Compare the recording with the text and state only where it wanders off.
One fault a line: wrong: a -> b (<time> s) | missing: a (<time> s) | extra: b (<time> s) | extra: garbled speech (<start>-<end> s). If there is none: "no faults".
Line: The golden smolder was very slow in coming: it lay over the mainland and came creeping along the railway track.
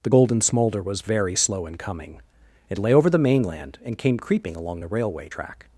no faults